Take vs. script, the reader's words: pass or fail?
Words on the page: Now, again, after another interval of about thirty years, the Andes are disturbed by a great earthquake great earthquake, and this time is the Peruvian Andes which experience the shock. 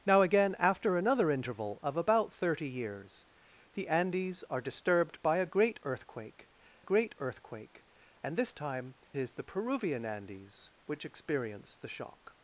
pass